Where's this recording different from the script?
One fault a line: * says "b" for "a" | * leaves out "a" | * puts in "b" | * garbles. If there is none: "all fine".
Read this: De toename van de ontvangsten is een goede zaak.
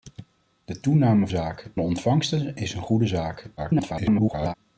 * says "zaak" for "van"
* garbles